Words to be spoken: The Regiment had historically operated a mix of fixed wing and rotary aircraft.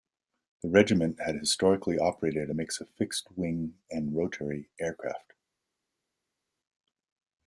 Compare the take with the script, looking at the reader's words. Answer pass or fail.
pass